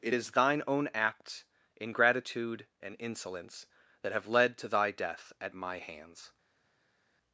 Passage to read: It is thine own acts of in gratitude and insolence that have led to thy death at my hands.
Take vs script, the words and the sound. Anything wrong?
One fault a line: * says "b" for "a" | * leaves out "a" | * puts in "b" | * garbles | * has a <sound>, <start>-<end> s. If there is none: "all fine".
* says "ingratitude" for "of in gratitude"